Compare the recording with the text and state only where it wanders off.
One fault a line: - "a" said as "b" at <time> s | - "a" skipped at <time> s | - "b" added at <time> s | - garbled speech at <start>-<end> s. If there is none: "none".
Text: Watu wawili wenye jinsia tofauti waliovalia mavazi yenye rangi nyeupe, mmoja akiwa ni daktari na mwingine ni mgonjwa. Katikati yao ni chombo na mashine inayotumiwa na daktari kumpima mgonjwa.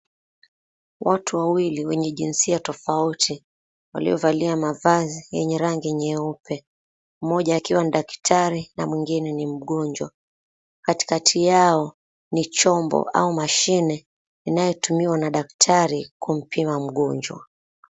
- "na" said as "au" at 13.1 s